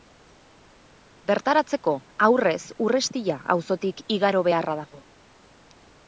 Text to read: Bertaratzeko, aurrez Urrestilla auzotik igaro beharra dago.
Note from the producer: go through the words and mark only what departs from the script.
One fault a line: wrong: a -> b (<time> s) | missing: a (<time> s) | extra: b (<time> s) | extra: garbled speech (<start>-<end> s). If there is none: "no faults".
no faults